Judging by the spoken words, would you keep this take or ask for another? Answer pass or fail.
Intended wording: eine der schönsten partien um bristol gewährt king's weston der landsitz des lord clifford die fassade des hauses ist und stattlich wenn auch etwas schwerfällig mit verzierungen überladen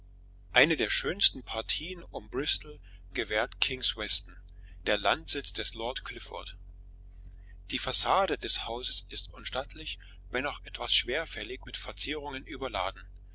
pass